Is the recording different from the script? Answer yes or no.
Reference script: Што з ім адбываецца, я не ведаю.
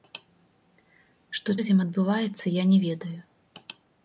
no